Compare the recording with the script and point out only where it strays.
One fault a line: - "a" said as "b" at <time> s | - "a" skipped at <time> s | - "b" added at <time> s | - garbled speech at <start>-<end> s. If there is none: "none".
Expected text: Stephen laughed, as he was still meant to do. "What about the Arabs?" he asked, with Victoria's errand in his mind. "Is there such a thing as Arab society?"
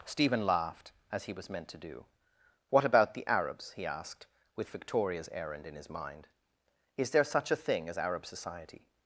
- "still" skipped at 1.5 s